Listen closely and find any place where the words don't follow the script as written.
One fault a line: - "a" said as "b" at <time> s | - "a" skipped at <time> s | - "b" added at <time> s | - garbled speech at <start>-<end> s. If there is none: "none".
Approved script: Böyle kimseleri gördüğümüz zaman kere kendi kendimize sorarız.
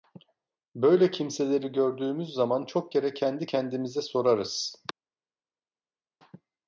- "çok" added at 2.6 s